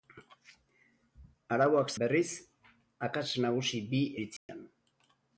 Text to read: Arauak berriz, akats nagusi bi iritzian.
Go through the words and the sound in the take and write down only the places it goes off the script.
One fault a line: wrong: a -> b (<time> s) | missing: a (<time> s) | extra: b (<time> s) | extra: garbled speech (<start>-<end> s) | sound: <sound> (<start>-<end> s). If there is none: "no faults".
sound: dropout (4.4-4.5 s)